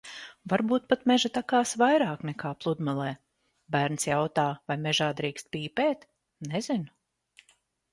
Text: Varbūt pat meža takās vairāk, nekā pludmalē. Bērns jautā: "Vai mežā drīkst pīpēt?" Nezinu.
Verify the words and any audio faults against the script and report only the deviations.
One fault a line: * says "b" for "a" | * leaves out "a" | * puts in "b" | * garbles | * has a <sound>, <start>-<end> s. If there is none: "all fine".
all fine